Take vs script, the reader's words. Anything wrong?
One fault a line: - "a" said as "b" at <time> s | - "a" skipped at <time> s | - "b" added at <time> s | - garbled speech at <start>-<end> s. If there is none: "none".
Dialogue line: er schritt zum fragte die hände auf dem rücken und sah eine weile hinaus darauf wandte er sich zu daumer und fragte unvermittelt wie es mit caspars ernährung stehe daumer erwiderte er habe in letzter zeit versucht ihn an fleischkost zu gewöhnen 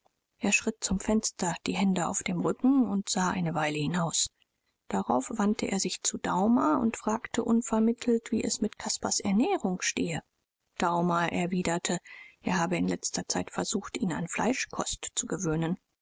- "fragte" said as "fenster" at 1.0 s